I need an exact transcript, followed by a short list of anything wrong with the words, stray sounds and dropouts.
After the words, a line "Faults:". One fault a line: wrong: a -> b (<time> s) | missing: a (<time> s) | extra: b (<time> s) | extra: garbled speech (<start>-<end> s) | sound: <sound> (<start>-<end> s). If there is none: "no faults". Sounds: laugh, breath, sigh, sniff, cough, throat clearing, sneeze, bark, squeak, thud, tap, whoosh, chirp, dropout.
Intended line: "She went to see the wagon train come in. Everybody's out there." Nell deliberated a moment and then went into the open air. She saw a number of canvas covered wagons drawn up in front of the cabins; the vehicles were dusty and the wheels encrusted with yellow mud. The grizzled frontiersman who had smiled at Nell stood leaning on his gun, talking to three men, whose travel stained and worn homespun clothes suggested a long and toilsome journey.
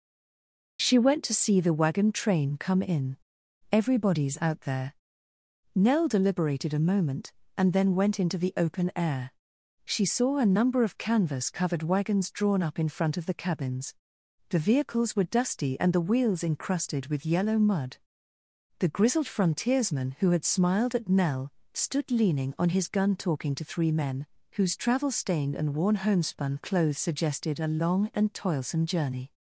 "She went to see the wagon train come in. Everybody's out there." Nell deliberated a moment and then went into the open air. She saw a number of canvas covered wagons drawn up in front of the cabins; the vehicles were dusty and the wheels encrusted with yellow mud. The grizzled frontiersman who had smiled at Nell stood leaning on his gun, talking to three men, whose travel stained and worn homespun clothes suggested a long and toilsome journey.
Faults:
no faults